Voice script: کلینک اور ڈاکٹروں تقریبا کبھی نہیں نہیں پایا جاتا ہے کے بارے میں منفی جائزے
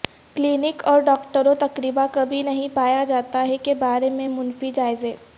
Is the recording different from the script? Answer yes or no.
yes